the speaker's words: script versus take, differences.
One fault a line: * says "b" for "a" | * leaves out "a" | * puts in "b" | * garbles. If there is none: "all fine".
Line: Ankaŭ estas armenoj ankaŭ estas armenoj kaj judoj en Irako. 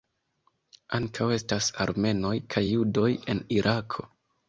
* leaves out "ankaŭ estas armenoj"